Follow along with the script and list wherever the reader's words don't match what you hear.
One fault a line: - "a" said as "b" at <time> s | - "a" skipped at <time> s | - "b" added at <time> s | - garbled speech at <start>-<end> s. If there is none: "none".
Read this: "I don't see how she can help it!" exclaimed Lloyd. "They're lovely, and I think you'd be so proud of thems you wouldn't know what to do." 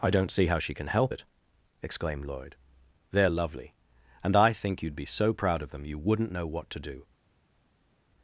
- "thems" said as "them" at 5.7 s